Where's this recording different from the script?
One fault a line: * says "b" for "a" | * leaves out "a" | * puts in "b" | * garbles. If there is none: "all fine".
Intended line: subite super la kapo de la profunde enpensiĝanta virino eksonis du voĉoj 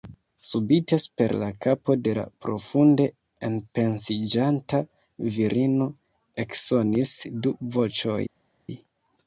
all fine